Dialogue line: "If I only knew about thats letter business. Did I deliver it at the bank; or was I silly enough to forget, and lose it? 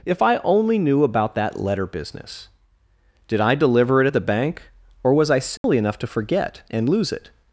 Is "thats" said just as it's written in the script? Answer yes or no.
no